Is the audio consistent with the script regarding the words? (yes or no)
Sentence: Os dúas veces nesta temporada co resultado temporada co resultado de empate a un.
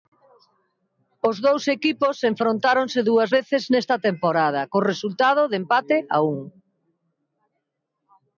no